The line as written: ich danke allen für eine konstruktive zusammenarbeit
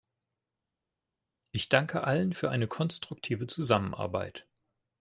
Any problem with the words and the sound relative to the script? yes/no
no